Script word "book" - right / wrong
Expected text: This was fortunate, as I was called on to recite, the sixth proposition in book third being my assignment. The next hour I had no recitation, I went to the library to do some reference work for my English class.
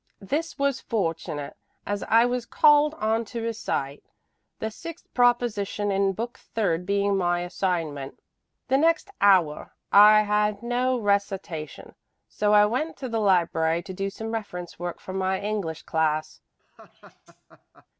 right